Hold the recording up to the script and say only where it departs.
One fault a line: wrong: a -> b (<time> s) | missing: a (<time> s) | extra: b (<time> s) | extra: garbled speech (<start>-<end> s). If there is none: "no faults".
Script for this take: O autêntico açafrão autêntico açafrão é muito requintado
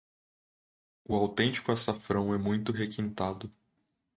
missing: autêntico açafrão (2.3 s)